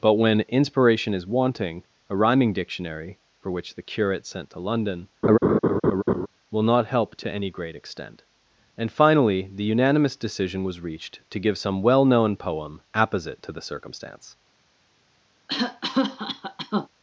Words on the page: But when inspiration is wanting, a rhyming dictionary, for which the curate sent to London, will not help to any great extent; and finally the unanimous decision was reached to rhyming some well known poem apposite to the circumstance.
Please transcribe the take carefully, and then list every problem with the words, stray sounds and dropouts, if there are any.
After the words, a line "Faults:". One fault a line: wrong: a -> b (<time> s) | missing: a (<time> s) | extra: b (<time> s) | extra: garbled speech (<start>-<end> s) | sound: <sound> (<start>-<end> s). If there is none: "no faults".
But when inspiration is wanting, a rhyming dictionary, for which the curate sent to London, will not help to any great extent; and finally the unanimous decision was reached to give some well known poem apposite to the circumstance.
Faults:
sound: laugh (5.2-6.3 s)
wrong: rhyming -> give (11.4 s)
sound: cough (15.5-16.9 s)